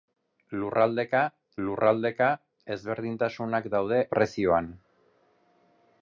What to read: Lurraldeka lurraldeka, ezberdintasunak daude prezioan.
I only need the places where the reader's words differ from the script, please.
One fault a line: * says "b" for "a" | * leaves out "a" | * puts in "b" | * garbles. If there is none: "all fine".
all fine